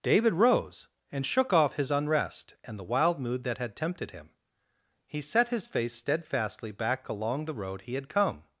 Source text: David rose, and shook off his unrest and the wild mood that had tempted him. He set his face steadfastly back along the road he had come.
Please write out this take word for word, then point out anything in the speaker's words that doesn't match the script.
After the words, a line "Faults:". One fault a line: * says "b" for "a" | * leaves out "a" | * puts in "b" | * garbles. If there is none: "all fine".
David rose, and shook off his unrest and the wild mood that had tempted him. He set his face steadfastly back along the road he had come.
Faults:
all fine